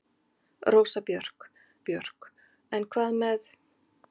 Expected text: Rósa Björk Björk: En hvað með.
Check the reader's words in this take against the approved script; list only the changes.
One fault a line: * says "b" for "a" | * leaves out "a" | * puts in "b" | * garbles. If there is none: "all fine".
all fine